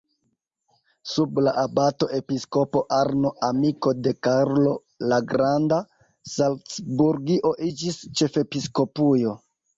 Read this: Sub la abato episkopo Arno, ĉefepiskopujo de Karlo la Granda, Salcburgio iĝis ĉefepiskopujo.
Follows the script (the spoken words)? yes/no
no